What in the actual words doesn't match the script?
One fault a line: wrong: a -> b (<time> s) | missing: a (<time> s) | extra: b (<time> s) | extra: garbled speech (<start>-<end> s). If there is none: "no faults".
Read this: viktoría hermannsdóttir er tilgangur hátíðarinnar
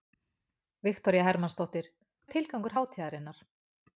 no faults